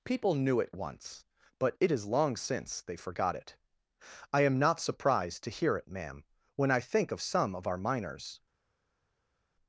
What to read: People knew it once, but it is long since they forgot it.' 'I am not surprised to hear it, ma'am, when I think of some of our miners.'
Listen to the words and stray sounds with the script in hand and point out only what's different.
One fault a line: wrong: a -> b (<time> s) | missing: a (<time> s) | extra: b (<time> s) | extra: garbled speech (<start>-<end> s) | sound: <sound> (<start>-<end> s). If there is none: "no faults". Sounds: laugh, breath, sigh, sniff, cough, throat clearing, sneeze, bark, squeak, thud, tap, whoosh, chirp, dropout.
no faults